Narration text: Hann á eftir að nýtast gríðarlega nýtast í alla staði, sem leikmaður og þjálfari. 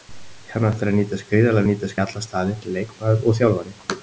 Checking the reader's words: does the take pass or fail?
pass